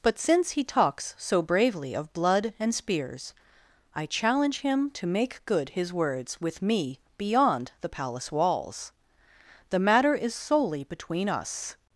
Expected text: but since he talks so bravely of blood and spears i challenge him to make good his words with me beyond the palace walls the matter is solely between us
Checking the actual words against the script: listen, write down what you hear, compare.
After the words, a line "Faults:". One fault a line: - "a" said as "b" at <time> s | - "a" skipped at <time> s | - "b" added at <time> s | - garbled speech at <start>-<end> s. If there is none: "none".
but since he talks so bravely of blood and spears i challenge him to make good his words with me beyond the palace walls the matter is solely between us
Faults:
none